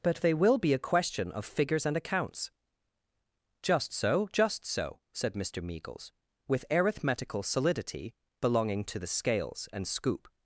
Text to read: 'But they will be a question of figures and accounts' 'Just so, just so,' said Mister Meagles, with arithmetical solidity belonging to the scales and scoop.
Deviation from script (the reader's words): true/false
false